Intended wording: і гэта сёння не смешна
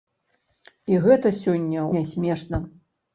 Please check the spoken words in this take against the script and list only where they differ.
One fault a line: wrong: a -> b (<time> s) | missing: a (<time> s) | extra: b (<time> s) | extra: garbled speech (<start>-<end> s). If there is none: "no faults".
no faults